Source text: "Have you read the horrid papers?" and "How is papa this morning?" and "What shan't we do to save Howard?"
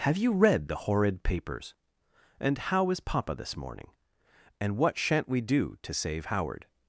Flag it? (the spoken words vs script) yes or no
no